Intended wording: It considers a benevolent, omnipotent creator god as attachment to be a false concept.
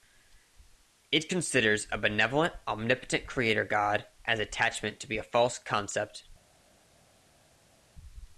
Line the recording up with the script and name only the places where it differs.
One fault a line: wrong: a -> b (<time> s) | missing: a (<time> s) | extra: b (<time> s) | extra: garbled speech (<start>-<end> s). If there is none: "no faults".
no faults